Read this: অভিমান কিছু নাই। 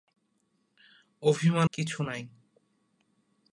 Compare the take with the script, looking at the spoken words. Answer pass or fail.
pass